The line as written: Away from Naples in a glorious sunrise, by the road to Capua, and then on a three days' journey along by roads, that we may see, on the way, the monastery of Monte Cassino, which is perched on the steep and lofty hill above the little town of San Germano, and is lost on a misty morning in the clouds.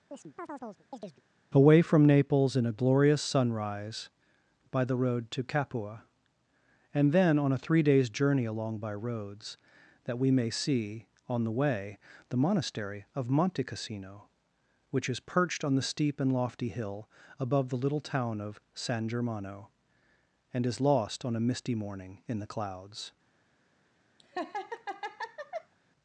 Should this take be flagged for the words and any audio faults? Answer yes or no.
yes